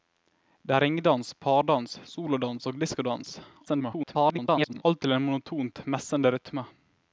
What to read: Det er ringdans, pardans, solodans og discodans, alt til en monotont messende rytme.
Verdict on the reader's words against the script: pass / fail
fail